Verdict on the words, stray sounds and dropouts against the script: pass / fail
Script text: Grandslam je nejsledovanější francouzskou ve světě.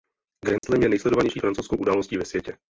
fail